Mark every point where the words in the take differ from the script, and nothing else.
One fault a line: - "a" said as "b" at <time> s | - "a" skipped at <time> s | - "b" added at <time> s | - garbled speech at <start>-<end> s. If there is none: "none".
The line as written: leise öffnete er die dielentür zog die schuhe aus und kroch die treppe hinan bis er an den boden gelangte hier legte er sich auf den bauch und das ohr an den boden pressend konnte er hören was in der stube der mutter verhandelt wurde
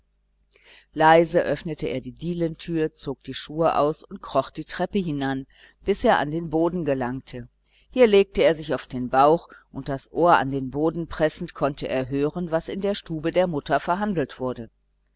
none